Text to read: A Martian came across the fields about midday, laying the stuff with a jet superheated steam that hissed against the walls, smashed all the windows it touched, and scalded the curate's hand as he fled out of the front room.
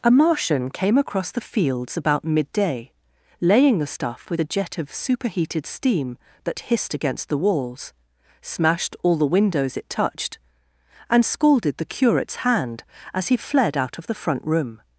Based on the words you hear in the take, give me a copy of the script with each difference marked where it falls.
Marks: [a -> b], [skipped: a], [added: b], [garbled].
A Martian came across the fields about midday, laying the stuff with a jet [added: of] superheated steam that hissed against the walls, smashed all the windows it touched, and scalded the curate's hand as he fled out of the front room.